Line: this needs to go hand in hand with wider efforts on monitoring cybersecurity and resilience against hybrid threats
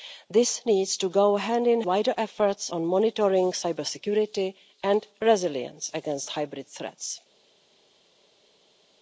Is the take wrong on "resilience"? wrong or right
right